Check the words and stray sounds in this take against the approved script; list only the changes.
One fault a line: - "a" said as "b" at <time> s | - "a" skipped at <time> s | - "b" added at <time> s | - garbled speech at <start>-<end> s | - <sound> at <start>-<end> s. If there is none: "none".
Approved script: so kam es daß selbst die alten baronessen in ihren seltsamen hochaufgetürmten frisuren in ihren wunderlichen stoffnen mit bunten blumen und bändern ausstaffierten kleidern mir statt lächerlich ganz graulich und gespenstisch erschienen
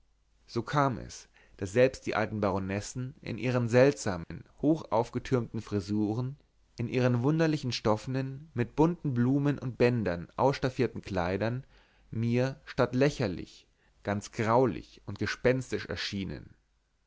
- dropout at 4.2-4.3 s